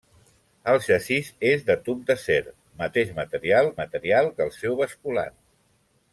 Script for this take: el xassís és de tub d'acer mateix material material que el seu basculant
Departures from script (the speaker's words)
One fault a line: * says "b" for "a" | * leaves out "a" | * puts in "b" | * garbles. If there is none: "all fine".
all fine